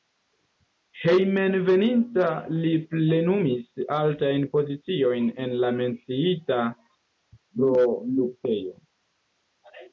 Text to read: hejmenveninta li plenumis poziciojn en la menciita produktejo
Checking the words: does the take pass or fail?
fail